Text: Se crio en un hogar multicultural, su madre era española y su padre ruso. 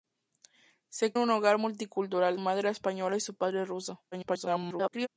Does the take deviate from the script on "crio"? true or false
true